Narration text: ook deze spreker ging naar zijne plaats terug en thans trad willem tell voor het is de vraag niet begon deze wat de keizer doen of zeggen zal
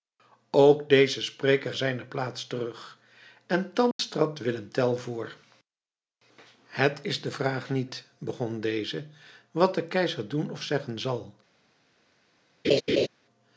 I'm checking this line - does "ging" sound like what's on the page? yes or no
no